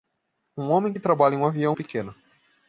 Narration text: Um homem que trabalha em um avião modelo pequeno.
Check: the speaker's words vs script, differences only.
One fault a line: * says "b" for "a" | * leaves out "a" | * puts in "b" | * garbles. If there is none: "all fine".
* leaves out "modelo"